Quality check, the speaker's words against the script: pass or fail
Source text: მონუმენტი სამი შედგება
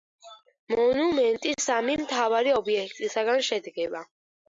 fail